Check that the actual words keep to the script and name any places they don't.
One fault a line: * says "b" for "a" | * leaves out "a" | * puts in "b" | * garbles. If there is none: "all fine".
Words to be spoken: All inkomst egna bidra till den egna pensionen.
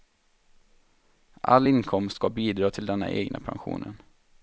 * says "ska" for "egna"